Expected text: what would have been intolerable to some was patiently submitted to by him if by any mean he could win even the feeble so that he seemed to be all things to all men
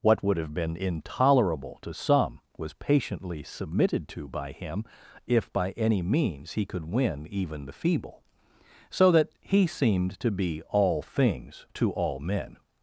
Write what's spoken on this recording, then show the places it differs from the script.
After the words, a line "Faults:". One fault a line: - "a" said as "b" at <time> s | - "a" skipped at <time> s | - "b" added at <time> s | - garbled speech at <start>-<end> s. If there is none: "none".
what would have been intolerable to some was patiently submitted to by him if by any means he could win even the feeble so that he seemed to be all things to all men
Faults:
- "mean" said as "means" at 6.0 s